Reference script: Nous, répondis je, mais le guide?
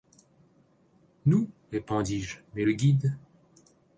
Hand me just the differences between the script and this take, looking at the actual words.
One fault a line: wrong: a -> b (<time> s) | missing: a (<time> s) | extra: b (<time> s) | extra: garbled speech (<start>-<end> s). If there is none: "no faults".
no faults